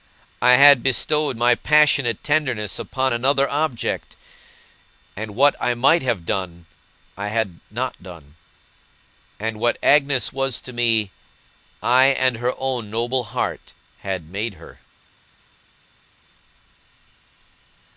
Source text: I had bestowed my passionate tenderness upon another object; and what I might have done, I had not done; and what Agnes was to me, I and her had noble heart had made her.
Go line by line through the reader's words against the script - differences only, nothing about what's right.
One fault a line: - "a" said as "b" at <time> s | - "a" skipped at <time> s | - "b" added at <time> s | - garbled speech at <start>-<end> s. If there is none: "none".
- "had" said as "own" at 12.6 s